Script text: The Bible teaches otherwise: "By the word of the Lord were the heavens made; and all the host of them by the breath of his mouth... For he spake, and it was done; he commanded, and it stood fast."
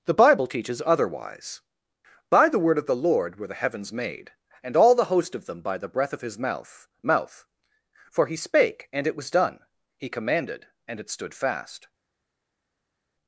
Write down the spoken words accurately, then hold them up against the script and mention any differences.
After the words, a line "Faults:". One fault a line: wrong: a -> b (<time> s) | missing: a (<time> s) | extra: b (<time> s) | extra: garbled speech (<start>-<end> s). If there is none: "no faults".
The Bible teaches otherwise: "By the word of the Lord were the heavens made; and all the host of them by the breath of his mouth mouth... For he spake, and it was done; he commanded, and it stood fast."
Faults:
extra: mouth (7.0 s)